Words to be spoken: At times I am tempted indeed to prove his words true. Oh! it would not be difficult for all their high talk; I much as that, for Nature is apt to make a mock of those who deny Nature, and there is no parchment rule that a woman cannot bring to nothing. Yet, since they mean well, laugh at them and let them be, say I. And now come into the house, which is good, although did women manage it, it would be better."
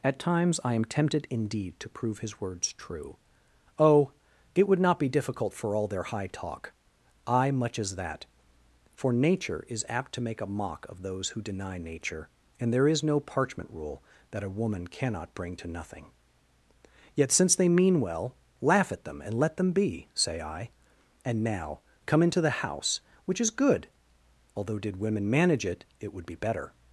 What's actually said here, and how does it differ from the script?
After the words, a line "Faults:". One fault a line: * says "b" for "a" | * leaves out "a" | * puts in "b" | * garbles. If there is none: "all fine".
At times I am tempted indeed to prove his words true. Oh! it would not be difficult for all their high talk; I much as that, for Nature is apt to make a mock of those who deny Nature, and there is no parchment rule that a woman cannot bring to nothing. Yet, since they mean well, laugh at them and let them be, say I. And now come into the house, which is good, although did women manage it, it would be better."
Faults:
all fine